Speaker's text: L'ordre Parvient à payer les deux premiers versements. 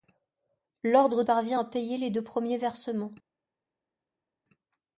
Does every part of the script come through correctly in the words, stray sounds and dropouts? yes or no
yes